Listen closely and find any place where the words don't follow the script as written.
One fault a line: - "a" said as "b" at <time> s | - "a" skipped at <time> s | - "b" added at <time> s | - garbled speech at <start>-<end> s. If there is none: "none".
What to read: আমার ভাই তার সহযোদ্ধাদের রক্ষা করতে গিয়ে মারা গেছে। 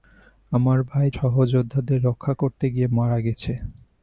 - "তার" skipped at 1.1 s